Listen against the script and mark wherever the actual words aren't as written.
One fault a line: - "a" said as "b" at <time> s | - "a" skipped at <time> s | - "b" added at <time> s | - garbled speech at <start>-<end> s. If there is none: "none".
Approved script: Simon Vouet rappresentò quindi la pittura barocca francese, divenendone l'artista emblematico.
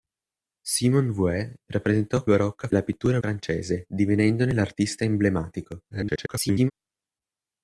- "quindi" said as "barocca" at 2.2 s
- "barocca" skipped at 3.2 s
- garbled speech at 5.9-6.7 s